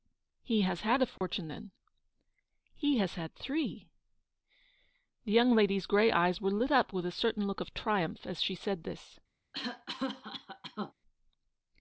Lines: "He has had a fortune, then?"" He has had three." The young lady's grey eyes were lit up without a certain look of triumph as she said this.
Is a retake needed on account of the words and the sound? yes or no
yes